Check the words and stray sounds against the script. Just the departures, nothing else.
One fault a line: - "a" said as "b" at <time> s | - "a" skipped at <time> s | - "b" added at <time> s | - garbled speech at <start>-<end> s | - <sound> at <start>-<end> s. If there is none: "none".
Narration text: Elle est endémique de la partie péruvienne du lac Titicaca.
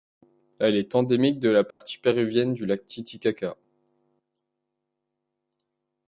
- dropout at 1.7-1.8 s